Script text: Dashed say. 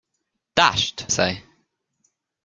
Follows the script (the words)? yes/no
yes